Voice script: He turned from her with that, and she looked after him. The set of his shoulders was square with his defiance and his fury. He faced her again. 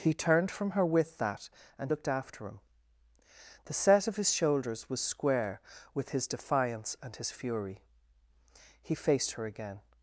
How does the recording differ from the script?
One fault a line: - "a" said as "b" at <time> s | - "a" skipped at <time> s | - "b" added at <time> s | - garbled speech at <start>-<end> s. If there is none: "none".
- "she" skipped at 1.9 s